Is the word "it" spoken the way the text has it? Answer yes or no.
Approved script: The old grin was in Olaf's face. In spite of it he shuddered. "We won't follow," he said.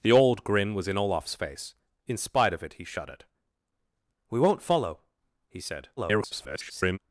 yes